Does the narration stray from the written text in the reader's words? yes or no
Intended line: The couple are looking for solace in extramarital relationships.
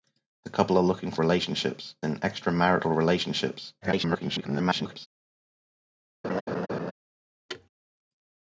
yes